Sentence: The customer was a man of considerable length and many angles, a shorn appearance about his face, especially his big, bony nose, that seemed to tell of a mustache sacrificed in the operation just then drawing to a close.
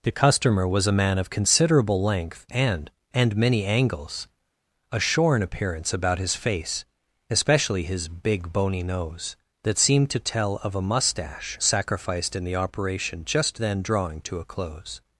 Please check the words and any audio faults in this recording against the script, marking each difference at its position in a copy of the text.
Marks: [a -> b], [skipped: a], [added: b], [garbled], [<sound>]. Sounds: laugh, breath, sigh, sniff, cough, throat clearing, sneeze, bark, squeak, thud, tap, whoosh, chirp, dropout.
The customer was a man of considerable length and [added: and] many angles, a shorn appearance about his face, especially his big, bony nose, that seemed to tell of a mustache sacrificed in the operation just then drawing to a close.